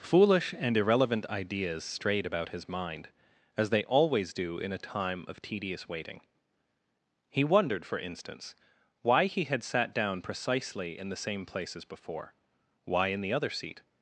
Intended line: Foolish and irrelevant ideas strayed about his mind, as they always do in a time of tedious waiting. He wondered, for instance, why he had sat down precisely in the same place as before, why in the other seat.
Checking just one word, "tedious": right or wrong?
right